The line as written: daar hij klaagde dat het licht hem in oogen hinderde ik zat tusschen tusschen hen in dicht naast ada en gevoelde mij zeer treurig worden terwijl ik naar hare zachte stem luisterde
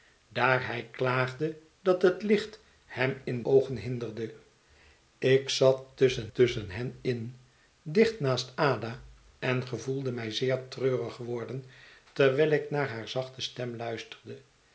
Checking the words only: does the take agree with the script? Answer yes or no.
yes